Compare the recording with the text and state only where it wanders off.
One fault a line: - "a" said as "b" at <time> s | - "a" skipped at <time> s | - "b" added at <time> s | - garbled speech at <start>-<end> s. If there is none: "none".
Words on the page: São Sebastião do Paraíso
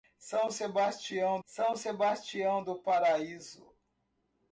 - "são Sebastião" added at 1.4 s